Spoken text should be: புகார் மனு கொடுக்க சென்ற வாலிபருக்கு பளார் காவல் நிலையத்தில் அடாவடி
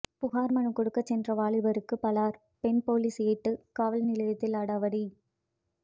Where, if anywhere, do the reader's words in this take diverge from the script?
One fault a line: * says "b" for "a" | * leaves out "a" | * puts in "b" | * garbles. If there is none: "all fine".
* puts in "பெண் போலீஸ் ஏட்டு"